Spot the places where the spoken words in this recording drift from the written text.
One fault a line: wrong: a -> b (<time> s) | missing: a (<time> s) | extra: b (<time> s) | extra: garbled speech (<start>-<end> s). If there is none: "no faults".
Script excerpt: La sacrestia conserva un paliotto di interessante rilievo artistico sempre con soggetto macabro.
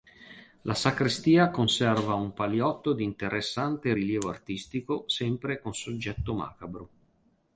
no faults